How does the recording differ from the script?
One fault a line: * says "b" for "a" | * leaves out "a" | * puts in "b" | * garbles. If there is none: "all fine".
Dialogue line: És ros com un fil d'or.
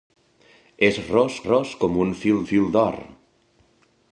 * puts in "ros"
* puts in "fil"